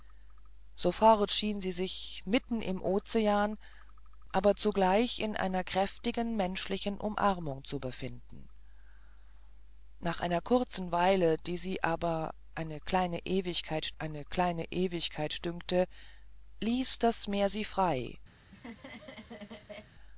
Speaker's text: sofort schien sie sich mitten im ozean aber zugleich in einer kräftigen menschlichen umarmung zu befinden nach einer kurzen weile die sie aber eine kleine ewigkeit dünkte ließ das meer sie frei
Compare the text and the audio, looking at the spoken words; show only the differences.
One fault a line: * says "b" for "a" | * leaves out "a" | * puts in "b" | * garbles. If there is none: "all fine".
* puts in "eine kleine ewigkeit"